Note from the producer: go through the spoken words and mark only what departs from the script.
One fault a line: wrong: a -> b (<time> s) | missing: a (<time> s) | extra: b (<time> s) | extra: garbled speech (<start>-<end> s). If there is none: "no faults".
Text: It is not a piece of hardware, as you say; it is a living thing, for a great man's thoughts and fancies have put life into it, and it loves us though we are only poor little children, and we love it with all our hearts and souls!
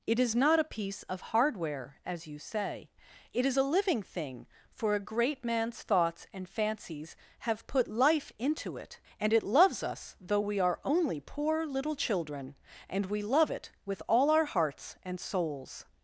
no faults